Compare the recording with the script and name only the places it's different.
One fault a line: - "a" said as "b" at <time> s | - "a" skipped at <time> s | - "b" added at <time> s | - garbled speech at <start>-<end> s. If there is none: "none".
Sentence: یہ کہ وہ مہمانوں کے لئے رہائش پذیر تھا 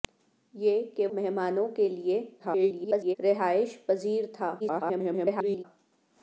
- "وہ" skipped at 1.1 s
- garbled speech at 2.4-3.2 s
- garbled speech at 4.6-5.6 s